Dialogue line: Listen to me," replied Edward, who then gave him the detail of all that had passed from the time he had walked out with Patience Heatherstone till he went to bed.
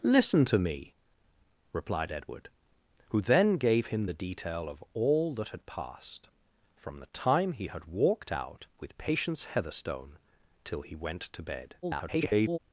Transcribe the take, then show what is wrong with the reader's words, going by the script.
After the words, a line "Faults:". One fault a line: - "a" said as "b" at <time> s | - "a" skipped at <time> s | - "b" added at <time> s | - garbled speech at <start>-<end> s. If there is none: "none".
Listen to me," replied Edward, who then gave him the detail of all that had passed from the time he had walked out with Patience Heatherstone till he went to bed. [garbled]
Faults:
- garbled speech at 11.8-12.6 s